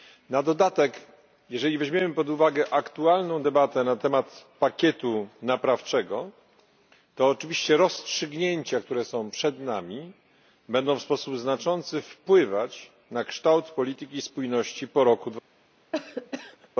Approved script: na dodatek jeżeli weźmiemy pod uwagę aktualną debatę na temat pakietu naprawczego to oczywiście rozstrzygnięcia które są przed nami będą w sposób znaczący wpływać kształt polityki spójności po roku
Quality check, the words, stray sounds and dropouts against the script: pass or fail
fail